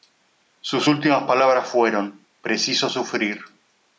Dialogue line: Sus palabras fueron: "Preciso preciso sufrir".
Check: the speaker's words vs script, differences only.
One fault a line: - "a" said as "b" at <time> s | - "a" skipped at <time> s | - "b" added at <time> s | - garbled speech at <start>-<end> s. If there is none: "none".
- "últimas" added at 0.9 s
- "preciso" skipped at 2.9 s